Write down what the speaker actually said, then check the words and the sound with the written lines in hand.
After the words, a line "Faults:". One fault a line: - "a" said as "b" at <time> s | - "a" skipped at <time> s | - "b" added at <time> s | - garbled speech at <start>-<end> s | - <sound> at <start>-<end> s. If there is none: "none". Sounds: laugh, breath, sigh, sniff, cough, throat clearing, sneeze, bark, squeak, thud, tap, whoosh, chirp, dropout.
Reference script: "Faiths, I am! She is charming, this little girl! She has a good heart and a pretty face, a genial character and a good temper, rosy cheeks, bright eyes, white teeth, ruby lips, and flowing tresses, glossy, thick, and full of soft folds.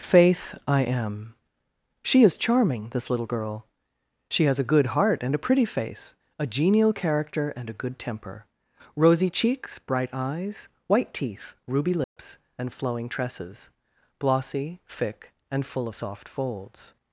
"Faith, I am! She is charming, this little girl! She has a good heart and a pretty face, a genial character and a good temper, rosy cheeks, bright eyes, white teeth, ruby lips, and flowing tresses, glossy, thick, and full of soft folds.
Faults:
- "Faiths" said as "Faith" at 0.0 s
- dropout at 12.0-12.2 s